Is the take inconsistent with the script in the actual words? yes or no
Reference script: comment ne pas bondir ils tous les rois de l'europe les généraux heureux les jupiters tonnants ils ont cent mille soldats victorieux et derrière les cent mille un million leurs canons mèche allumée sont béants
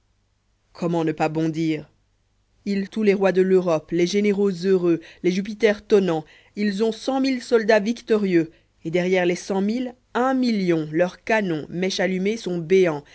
no